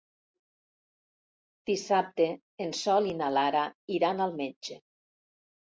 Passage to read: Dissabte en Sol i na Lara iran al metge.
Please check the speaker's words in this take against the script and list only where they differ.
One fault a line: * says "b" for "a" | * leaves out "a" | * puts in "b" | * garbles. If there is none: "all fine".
all fine